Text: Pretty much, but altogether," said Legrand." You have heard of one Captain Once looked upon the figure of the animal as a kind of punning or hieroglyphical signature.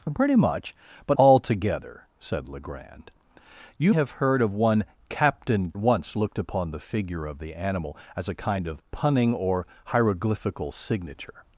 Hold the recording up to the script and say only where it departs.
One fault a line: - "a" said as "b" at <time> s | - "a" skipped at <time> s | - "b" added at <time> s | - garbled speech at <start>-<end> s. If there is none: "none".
none